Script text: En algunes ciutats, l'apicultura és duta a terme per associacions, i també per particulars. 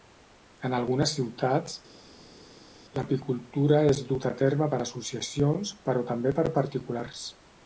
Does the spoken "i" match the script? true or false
false